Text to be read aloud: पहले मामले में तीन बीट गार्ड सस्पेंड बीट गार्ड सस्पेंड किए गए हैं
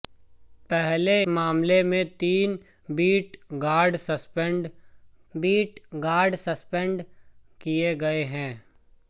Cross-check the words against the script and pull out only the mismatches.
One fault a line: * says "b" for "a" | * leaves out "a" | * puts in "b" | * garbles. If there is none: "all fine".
all fine